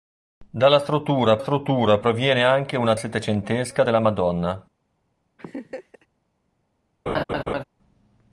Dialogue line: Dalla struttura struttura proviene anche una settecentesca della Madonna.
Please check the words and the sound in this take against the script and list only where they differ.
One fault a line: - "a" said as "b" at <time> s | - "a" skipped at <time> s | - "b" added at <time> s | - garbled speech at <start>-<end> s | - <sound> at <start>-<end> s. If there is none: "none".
- laugh at 5.4-6.1 s
- laugh at 7.1-7.6 s